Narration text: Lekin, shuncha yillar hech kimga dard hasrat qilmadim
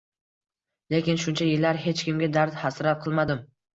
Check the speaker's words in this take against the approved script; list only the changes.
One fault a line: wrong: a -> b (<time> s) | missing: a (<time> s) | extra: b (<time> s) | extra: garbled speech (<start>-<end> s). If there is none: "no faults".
no faults